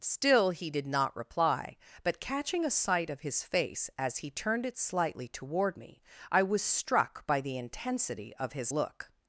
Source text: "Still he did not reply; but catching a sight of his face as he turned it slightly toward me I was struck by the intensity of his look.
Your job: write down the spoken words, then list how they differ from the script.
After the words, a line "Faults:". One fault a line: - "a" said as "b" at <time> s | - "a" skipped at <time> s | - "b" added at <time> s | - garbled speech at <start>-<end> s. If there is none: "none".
"Still he did not reply; but catching a sight of his face as he turned it slightly toward me I was struck by the intensity of his look.
Faults:
none